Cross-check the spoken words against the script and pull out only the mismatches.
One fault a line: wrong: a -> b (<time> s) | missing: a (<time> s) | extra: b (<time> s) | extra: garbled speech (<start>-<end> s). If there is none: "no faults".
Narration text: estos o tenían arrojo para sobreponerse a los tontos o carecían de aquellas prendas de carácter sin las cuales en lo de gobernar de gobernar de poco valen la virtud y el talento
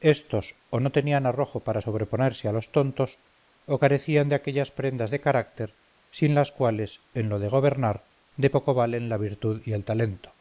extra: no (0.8 s)
missing: gobernar de (8.5 s)